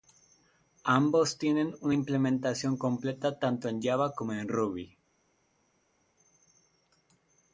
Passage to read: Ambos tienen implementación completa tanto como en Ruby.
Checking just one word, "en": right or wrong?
right